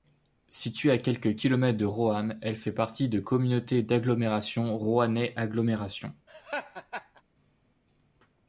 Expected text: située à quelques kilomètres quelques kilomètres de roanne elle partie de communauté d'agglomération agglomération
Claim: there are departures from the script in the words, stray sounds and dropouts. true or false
true